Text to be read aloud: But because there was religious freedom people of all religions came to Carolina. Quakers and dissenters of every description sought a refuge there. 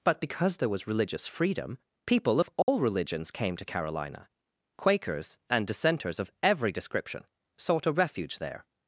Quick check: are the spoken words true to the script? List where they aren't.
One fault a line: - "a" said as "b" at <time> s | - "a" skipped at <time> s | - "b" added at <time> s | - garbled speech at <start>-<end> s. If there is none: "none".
none